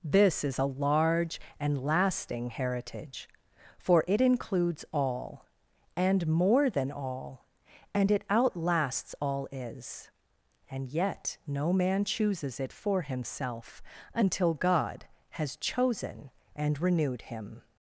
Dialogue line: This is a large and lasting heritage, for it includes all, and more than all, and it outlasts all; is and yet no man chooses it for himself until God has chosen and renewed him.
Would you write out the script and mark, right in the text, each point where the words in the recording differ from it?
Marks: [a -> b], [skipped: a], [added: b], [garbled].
This is a large and lasting heritage, for it includes all, and more than all, and it outlasts all; is and yet no man chooses it for himself until God has chosen and renewed him.